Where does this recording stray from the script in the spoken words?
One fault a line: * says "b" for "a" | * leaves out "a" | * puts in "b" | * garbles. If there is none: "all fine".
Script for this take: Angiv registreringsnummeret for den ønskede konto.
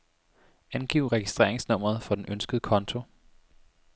all fine